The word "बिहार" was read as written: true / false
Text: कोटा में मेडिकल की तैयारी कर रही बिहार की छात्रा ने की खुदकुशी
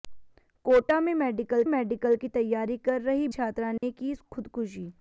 false